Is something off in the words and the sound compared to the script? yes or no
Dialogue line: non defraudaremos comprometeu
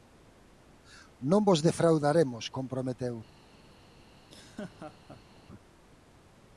yes